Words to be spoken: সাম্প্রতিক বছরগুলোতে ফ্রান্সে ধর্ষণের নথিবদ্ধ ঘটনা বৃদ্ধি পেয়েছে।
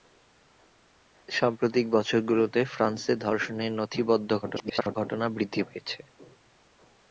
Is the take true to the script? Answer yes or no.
no